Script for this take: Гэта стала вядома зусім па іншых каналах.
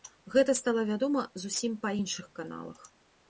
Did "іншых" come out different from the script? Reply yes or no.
no